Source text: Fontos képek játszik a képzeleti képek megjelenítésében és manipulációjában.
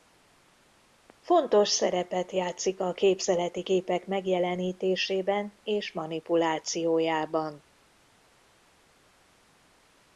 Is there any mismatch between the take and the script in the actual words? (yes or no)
yes